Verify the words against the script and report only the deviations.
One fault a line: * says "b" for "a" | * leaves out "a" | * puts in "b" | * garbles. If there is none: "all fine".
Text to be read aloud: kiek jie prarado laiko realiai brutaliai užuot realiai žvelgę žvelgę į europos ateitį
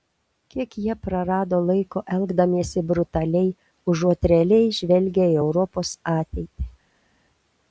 * says "elgdamiesi" for "realiai"
* leaves out "žvelgę"